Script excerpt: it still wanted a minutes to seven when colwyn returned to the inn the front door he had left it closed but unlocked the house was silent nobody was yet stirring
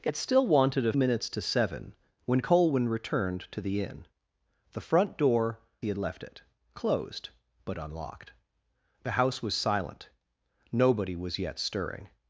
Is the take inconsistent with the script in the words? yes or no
no